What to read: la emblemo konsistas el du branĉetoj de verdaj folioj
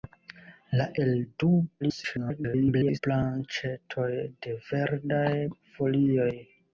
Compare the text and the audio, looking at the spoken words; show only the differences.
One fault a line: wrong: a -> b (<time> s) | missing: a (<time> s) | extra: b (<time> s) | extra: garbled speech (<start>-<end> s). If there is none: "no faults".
missing: emblemo konsistas (0.8 s)
extra: garbled speech (1.8-3.0 s)